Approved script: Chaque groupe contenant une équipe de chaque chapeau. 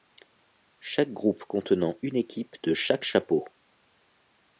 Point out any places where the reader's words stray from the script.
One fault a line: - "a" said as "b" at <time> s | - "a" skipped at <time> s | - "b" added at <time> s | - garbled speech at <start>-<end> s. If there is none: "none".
none